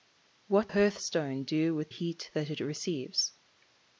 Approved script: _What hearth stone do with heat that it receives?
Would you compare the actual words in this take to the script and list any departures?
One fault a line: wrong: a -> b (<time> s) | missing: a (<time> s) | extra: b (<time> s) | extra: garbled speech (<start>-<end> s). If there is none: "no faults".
no faults